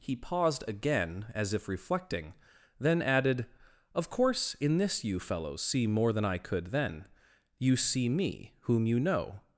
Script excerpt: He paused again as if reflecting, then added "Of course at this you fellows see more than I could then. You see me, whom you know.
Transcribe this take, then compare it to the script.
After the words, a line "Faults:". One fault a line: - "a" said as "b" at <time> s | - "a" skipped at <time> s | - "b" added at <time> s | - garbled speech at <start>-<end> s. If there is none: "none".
He paused again as if reflecting, then added "Of course in this you fellows see more than I could then. You see me, whom you know.
Faults:
- "at" said as "in" at 4.5 s